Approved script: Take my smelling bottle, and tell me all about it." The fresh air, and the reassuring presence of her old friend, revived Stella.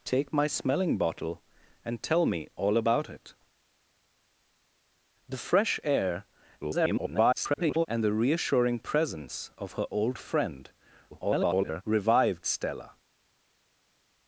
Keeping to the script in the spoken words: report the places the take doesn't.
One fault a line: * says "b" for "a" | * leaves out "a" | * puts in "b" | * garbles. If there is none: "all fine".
* garbles
* garbles